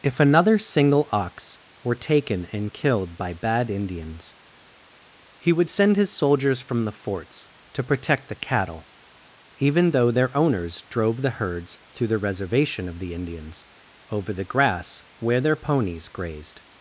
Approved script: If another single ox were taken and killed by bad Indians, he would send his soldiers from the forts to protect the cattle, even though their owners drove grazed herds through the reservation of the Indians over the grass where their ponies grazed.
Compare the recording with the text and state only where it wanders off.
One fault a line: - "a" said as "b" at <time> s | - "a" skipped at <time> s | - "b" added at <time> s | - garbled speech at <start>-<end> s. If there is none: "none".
- "grazed" said as "the" at 11.2 s